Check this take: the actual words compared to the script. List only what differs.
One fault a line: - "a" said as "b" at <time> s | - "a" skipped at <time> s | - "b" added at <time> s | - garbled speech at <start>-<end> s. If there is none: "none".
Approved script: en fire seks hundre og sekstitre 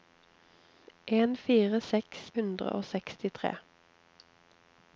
none